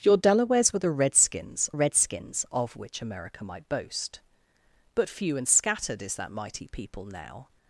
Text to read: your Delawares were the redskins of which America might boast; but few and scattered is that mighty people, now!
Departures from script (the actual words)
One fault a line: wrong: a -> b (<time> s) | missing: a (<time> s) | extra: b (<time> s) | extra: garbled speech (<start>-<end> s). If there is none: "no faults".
extra: redskins (1.7 s)